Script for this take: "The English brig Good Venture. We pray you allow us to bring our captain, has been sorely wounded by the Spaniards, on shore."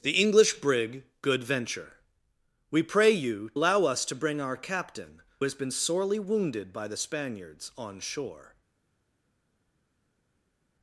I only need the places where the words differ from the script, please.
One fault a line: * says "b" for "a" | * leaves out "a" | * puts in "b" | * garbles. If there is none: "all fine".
all fine